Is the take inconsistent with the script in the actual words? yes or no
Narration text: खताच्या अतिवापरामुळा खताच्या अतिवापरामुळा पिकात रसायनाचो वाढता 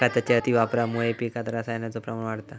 yes